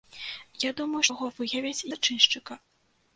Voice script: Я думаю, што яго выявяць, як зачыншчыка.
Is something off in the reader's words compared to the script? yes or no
yes